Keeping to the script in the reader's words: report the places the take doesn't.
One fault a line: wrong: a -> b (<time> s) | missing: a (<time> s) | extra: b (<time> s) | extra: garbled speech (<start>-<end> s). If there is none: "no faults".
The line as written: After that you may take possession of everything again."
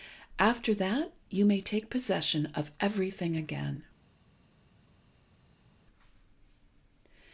no faults